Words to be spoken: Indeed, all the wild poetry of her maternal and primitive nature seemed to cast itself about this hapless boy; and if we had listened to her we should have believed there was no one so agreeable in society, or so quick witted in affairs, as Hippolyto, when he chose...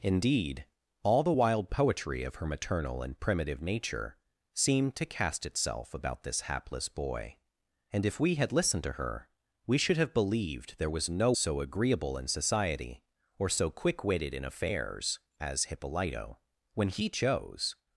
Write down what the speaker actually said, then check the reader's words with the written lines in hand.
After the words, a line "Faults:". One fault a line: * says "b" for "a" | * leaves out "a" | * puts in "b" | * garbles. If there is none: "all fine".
Indeed, all the wild poetry of her maternal and primitive nature seemed to cast itself about this hapless boy; and if we had listened to her we should have believed there was no so agreeable in society, or so quick witted in affairs, as Hippolyto, when he chose...
Faults:
* leaves out "one"